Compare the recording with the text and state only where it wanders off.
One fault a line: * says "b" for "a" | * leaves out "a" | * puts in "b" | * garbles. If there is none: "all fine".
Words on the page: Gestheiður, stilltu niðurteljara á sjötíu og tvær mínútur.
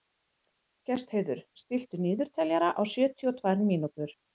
all fine